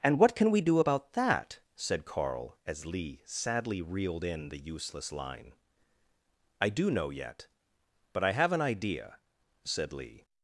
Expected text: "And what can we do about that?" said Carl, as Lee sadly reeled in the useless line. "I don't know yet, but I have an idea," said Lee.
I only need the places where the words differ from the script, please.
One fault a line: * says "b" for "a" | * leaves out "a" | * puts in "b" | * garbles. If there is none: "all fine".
* says "do" for "don't"